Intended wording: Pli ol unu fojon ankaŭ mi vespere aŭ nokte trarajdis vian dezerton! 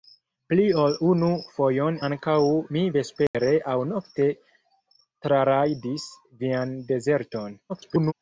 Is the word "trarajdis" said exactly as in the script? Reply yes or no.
yes